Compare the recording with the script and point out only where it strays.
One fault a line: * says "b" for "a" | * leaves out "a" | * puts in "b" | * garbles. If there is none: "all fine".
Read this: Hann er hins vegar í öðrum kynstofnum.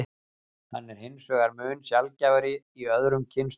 * puts in "mun sjaldgæfari"